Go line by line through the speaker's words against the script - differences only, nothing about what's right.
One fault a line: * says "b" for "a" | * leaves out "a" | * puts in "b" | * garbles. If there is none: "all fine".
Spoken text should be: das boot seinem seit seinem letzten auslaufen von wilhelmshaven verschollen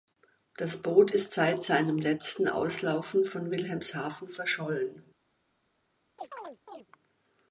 * says "ist" for "seinem"